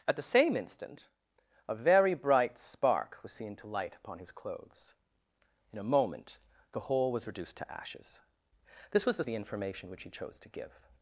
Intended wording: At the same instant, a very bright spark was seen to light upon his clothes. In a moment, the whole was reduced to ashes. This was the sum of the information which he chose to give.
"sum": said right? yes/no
no